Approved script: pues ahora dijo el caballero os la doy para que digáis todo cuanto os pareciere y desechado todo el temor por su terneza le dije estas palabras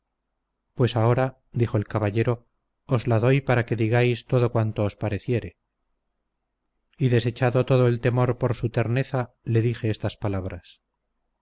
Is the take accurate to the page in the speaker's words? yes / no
yes